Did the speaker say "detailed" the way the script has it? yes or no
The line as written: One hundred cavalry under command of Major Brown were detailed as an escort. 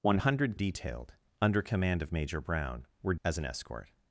no